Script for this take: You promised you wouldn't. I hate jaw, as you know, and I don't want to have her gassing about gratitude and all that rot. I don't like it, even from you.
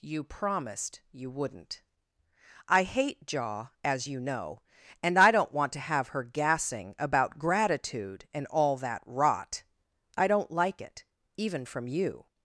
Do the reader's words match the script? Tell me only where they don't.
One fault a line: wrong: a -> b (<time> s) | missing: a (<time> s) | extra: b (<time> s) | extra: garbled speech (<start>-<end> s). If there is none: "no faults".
no faults